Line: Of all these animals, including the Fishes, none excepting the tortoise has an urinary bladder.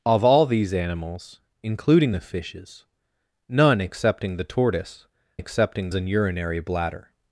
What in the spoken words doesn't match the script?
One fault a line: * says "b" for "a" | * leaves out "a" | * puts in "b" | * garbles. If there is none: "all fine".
* says "excepting" for "has"